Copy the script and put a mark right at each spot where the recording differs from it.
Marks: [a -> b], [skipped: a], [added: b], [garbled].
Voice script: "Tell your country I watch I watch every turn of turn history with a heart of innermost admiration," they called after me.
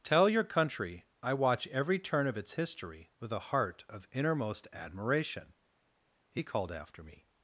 "Tell your country I watch [skipped: I watch] every turn of [turn -> its] history with a heart of innermost admiration," [they -> he] called after me.